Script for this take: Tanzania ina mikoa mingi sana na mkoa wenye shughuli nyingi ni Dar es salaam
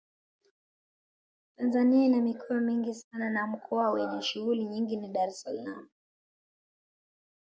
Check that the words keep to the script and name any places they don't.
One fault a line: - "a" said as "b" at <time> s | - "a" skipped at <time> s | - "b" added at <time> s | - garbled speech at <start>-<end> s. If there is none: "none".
none